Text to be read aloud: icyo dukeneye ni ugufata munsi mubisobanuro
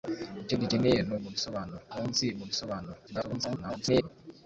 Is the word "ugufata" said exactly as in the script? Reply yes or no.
no